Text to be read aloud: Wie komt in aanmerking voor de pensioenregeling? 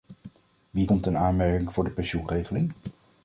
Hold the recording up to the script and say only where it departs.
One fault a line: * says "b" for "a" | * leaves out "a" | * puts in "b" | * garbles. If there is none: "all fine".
all fine